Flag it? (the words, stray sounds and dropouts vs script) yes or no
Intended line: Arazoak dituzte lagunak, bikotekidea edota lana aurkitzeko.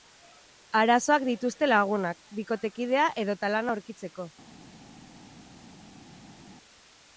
no